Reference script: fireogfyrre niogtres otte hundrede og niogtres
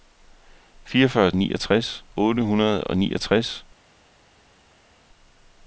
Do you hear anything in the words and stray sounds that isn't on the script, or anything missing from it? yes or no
no